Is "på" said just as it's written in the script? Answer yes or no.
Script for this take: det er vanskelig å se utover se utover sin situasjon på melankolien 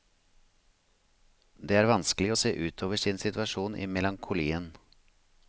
no